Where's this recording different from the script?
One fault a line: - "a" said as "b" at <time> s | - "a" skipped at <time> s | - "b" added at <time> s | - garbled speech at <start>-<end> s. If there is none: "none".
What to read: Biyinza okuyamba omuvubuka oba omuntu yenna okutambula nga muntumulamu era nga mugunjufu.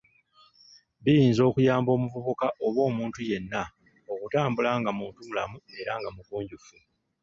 none